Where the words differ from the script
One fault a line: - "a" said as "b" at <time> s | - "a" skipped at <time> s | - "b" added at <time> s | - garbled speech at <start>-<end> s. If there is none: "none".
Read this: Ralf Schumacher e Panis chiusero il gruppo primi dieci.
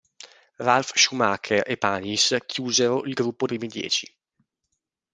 none